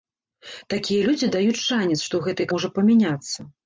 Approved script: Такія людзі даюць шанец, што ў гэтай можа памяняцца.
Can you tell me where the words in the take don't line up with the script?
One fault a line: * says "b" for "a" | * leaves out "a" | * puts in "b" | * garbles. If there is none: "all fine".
all fine